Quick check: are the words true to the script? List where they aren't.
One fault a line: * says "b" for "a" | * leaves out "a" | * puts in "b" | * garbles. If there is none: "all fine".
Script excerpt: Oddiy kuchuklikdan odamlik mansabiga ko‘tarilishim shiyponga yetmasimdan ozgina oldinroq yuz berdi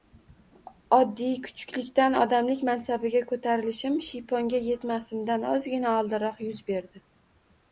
all fine